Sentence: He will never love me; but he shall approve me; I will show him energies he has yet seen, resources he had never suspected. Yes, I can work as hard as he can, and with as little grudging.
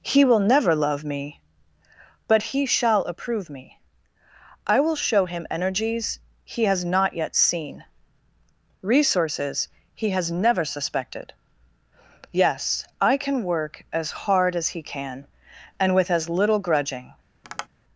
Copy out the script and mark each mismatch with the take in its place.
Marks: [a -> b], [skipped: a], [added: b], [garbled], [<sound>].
He will never love me; but he shall approve me; I will show him energies he has [added: not] yet seen, resources he [had -> has] never suspected. Yes, I can work as hard as he can, and with as little grudging. [tap]